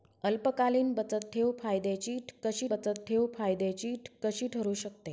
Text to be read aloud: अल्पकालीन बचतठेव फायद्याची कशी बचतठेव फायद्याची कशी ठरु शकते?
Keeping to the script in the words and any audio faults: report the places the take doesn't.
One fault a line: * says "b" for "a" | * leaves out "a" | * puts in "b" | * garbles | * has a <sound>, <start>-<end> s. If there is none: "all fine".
all fine